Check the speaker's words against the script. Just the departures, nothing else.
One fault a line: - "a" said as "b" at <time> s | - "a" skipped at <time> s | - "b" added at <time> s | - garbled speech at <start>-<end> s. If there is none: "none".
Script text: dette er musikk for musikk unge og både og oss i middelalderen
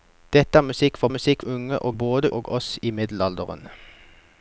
none